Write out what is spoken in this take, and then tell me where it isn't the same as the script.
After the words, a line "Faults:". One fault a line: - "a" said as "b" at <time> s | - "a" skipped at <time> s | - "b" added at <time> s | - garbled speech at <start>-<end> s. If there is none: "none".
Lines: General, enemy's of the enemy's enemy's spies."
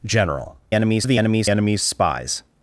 General, enemy's of the enemy's enemy's spies."
Faults:
none